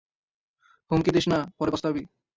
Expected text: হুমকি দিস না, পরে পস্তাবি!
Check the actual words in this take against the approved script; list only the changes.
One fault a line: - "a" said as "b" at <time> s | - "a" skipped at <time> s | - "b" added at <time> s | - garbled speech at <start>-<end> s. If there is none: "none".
none